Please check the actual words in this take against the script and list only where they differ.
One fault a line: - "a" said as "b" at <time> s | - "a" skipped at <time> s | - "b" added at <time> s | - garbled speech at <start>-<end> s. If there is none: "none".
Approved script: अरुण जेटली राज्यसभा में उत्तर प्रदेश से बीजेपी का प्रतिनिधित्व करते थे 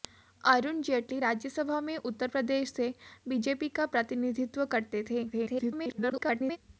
- garbled speech at 5.3-6.6 s